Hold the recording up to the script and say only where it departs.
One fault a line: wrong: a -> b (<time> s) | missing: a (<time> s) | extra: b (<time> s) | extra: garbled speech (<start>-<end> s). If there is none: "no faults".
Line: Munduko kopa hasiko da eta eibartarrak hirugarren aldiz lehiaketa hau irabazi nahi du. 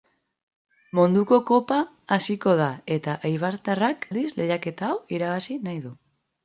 missing: hirugarren (4.1 s)